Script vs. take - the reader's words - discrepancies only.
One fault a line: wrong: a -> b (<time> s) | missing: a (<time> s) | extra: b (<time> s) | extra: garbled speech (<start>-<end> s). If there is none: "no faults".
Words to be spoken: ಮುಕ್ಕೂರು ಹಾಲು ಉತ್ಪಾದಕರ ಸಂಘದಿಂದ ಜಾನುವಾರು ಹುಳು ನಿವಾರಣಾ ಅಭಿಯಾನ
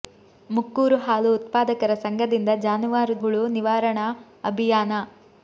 no faults